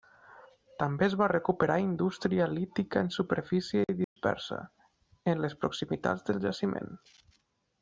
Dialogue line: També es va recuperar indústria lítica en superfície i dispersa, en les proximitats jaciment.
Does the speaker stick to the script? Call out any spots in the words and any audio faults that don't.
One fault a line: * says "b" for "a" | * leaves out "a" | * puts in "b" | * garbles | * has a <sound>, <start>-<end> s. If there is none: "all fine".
* has a dropout, 4.0-4.2 s
* puts in "del"